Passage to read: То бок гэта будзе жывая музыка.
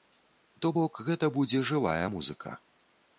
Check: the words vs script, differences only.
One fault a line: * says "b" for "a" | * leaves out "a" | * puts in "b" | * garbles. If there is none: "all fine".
all fine